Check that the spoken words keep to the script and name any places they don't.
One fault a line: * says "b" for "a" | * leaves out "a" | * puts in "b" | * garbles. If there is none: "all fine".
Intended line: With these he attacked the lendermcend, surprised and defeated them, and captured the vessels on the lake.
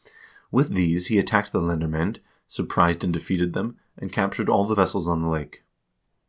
* puts in "all"